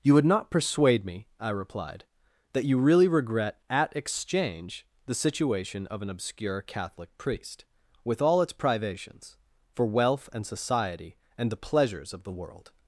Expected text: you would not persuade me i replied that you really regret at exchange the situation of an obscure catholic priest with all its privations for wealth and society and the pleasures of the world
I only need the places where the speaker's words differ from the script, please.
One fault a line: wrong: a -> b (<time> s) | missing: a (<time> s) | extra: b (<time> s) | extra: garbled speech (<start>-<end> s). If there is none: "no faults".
no faults